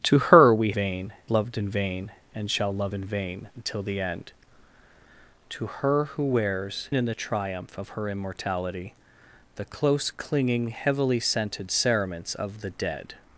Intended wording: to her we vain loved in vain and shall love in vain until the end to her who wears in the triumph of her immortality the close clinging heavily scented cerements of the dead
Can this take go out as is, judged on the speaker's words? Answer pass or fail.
pass